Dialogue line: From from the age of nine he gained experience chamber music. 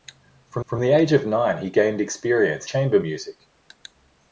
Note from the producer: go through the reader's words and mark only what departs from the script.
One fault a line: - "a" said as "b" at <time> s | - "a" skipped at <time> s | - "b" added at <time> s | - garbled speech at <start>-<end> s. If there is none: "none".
none